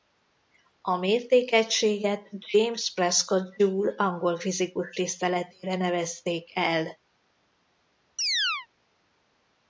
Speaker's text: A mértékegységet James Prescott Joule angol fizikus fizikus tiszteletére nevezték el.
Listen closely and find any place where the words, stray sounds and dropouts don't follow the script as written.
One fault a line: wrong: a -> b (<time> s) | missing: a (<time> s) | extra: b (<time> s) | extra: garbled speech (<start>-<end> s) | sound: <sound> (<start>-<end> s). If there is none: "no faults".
missing: fizikus (4.9 s)
sound: chirp (8.2-8.7 s)